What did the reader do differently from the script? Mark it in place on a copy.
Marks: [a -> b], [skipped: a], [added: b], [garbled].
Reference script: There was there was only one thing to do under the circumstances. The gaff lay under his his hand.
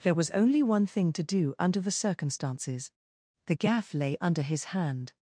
There was [skipped: there was] only one thing to do under the circumstances. The gaff lay under his [skipped: his] hand.